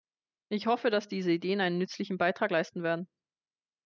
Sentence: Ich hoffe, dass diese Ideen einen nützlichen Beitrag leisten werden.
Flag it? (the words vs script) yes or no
no